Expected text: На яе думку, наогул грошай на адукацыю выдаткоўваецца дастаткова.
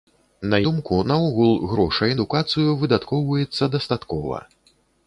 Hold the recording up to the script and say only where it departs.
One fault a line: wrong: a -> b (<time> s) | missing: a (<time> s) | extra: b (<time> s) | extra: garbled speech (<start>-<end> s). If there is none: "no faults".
missing: яе (0.6 s)
missing: на (2.2 s)